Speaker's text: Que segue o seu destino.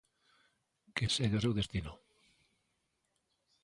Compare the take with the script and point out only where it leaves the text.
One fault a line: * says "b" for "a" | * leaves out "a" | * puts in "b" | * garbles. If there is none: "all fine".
all fine